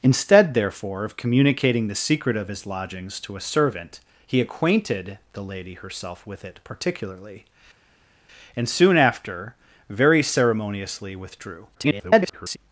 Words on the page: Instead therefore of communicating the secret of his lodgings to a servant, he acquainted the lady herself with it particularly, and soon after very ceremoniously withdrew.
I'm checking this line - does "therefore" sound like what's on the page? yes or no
yes